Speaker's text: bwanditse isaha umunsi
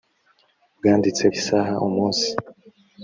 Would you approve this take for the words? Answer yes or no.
yes